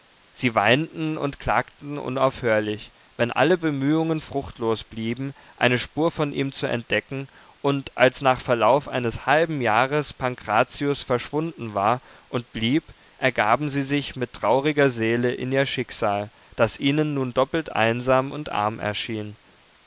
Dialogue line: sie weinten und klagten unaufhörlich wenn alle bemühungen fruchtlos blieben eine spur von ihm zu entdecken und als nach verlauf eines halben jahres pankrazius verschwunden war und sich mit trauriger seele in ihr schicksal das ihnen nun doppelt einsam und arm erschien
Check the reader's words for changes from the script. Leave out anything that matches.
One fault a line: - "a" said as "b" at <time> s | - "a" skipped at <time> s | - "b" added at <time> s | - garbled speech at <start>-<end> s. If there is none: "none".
- "blieb ergaben sie" added at 12.5 s